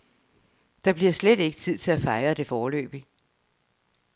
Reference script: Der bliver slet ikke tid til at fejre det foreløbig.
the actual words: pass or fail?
pass